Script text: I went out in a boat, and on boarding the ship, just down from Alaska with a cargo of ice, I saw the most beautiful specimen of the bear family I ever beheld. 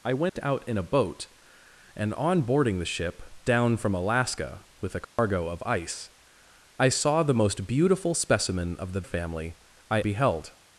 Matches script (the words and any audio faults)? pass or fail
fail